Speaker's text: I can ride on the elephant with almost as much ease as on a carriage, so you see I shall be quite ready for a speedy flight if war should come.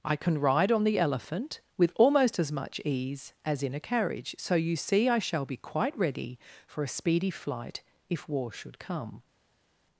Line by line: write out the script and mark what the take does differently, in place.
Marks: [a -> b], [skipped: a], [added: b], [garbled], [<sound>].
I can ride on the elephant with almost as much ease as [on -> in] a carriage, so you see I shall be quite ready for a speedy flight if war should come.